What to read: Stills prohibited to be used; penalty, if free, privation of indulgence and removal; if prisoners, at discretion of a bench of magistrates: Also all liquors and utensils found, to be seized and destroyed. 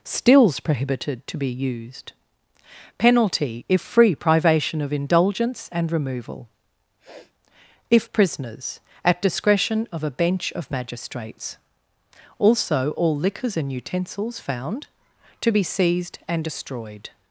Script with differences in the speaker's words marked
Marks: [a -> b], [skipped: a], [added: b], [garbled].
Stills prohibited to be used; penalty, if free, privation of indulgence and removal; if prisoners, at discretion of a bench of magistrates: Also all liquors and utensils found, to be seized and destroyed.